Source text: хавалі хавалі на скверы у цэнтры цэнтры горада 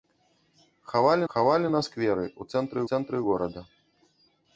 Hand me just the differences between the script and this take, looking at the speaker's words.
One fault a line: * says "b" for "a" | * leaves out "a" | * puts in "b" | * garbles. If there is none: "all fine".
all fine